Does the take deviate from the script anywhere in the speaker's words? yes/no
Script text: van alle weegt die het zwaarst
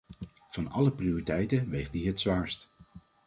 yes